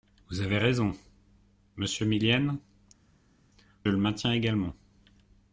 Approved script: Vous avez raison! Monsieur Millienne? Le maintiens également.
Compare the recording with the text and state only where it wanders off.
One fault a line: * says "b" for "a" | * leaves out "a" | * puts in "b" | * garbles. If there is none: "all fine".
all fine